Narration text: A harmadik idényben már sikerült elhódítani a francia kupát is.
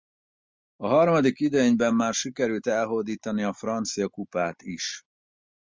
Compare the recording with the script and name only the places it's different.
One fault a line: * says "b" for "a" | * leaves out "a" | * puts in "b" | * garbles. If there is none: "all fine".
all fine